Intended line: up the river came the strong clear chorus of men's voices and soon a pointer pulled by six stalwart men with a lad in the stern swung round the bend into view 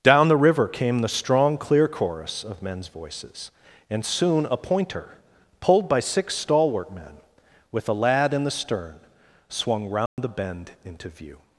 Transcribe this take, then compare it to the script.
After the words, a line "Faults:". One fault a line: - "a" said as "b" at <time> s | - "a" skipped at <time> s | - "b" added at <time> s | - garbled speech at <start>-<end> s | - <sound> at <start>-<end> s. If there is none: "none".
down the river came the strong clear chorus of men's voices and soon a pointer pulled by six stalwart men with a lad in the stern swung round the bend into view
Faults:
- "up" said as "down" at 0.0 s
- dropout at 10.1-10.2 s